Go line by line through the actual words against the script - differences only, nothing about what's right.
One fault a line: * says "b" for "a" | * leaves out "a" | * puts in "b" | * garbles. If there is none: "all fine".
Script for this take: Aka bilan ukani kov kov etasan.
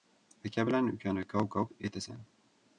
all fine